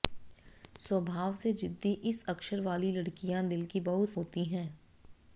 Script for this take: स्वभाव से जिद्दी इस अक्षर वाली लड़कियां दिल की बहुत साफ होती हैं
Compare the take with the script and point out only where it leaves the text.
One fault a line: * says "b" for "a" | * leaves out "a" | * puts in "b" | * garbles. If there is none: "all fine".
* leaves out "साफ"